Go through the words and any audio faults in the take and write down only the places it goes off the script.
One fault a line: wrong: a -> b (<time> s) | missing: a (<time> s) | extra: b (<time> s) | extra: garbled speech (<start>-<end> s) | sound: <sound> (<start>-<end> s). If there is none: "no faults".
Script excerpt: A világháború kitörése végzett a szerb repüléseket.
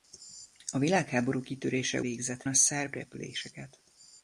no faults